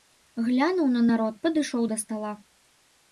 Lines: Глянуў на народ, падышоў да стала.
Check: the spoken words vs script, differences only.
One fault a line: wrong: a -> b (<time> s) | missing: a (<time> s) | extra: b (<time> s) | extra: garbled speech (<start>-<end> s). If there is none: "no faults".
no faults